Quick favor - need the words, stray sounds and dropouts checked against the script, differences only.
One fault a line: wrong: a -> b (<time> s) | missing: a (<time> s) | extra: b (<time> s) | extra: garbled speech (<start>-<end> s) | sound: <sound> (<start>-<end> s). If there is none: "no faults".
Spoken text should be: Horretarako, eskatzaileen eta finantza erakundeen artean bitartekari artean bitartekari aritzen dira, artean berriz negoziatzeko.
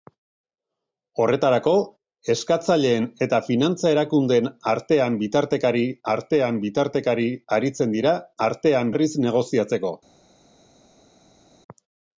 no faults